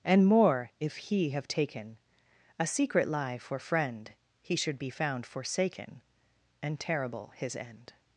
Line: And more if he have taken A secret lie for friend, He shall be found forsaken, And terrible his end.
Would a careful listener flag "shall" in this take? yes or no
yes